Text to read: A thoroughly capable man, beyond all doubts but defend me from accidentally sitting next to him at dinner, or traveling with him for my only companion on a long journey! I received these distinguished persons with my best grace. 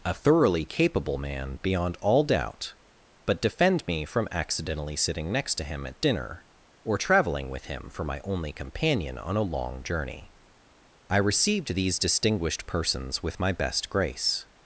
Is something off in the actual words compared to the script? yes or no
yes